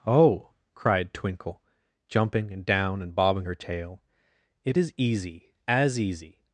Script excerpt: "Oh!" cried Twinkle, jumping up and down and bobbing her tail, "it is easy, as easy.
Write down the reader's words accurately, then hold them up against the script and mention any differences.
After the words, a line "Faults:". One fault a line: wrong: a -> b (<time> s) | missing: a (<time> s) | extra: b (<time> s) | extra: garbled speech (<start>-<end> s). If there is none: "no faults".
"Oh!" cried Twinkle, jumping and down and bobbing her tail, "it is easy, as easy.
Faults:
missing: up (2.5 s)